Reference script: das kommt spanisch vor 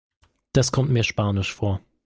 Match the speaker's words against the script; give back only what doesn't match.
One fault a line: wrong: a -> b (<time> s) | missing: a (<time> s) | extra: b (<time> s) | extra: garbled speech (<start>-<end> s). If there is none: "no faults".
extra: mir (0.9 s)